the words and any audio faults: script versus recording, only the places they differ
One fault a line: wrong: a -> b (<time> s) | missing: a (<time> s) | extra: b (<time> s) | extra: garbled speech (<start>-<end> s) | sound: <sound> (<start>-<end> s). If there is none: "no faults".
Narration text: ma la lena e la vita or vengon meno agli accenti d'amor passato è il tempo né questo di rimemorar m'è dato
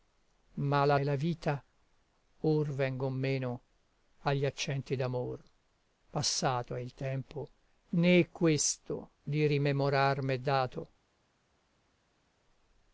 missing: lena (1.0 s)